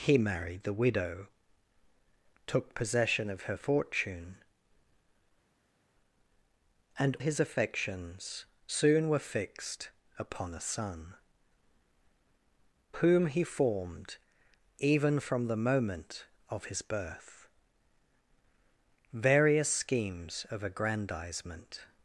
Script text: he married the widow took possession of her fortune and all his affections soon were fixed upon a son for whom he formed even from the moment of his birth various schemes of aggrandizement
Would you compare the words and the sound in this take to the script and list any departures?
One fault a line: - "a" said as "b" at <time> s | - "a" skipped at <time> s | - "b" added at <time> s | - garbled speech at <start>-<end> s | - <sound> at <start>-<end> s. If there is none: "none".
- "all" skipped at 7.1 s
- "for" skipped at 11.1 s